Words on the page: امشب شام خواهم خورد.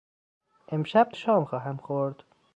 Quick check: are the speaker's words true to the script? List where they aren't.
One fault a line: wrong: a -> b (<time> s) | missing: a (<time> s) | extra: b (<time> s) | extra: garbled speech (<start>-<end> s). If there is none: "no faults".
no faults